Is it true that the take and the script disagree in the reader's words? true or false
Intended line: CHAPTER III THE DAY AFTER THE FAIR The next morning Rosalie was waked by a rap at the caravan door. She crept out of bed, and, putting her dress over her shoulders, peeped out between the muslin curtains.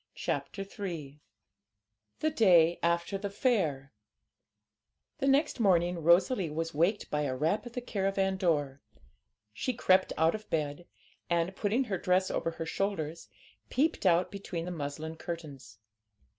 false